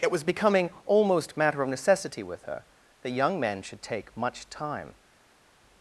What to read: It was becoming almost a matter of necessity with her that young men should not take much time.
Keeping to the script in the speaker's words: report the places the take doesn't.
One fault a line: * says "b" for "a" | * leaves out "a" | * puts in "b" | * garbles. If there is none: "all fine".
* leaves out "a"
* leaves out "not"